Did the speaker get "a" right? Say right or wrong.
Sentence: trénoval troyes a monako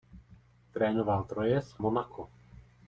wrong